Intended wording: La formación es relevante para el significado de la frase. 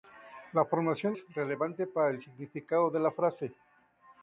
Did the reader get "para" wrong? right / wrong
right